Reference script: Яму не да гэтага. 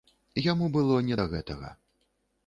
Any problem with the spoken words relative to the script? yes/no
yes